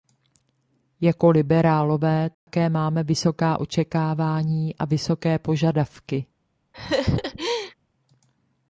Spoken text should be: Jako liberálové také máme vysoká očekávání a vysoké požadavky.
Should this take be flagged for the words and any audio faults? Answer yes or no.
yes